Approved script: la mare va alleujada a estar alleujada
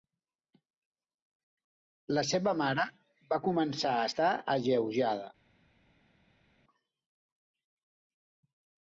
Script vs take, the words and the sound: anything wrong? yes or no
yes